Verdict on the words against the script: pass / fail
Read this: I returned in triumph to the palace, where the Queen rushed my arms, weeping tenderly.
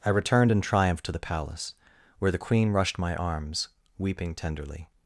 pass